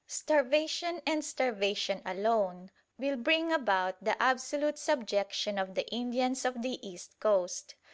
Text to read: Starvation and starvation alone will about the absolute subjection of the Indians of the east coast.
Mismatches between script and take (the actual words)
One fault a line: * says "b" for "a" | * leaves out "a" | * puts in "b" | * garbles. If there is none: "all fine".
* puts in "bring"